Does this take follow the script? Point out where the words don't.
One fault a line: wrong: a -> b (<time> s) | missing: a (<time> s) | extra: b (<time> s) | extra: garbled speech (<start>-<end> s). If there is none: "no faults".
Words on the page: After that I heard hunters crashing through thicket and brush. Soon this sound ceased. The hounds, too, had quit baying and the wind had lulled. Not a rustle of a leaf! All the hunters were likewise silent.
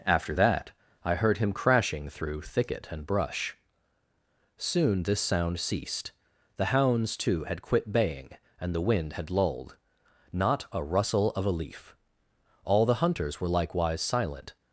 wrong: hunters -> him (1.4 s)